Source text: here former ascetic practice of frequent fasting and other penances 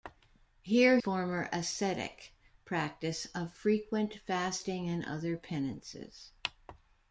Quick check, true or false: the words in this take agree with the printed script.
true